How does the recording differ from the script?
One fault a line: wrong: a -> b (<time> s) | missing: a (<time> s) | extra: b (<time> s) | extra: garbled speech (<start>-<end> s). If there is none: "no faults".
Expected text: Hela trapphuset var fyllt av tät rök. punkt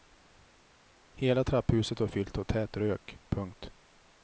no faults